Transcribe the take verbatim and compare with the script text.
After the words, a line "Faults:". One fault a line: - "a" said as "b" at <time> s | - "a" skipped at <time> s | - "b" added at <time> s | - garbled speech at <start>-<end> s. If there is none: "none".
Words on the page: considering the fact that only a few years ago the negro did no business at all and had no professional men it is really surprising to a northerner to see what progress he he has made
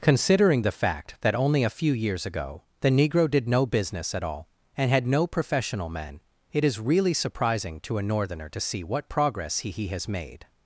considering the fact that only a few years ago the negro did no business at all and had no professional men it is really surprising to a northerner to see what progress he he has made
Faults:
none